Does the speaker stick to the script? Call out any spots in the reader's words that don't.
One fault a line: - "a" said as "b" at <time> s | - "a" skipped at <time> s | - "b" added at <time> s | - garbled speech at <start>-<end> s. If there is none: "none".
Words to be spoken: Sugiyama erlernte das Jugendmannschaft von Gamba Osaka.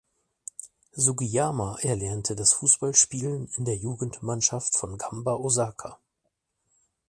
- "Fußballspielen in der" added at 2.5 s